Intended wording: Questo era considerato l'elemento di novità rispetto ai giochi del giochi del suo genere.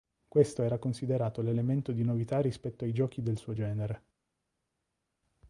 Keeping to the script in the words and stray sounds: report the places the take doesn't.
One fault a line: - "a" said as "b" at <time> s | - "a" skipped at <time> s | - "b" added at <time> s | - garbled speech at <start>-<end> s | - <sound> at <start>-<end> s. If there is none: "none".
- "giochi del" skipped at 3.4 s